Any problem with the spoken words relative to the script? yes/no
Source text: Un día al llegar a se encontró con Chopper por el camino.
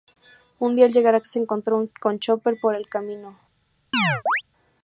no